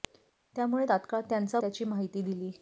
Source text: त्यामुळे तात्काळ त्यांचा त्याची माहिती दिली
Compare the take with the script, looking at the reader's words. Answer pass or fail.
pass